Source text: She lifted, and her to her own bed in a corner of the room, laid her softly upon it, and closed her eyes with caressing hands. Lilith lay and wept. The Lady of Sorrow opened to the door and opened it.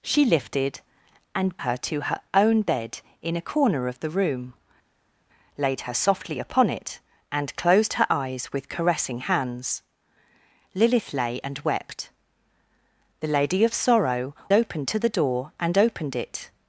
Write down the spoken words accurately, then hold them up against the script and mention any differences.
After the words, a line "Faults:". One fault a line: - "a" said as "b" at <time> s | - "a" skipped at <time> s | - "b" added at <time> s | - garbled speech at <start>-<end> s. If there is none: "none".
She lifted, and her to her own bed in a corner of the room, laid her softly upon it, and closed her eyes with caressing hands. Lilith lay and wept. The Lady of Sorrow opened to the door and opened it.
Faults:
none